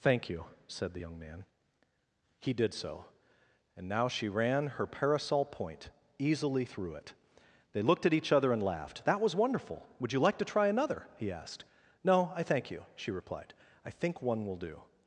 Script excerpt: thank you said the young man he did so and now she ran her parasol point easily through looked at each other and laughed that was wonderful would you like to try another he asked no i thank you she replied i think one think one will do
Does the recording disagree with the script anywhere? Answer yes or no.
yes